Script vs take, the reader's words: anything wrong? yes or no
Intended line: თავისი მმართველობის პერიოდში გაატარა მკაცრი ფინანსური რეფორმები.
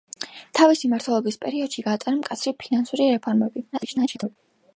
yes